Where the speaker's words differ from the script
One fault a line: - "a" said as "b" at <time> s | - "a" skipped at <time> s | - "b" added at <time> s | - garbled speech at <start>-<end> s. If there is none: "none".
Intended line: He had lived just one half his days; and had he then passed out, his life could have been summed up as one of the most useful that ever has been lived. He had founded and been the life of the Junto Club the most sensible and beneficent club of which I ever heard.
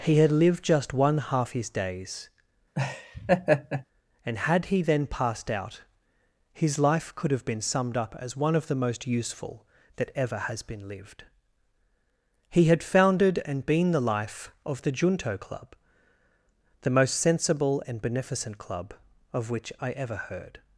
none